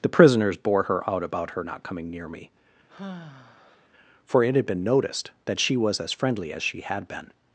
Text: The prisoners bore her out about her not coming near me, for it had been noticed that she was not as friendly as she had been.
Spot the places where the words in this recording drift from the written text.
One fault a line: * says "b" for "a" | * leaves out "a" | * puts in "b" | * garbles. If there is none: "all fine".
* leaves out "not"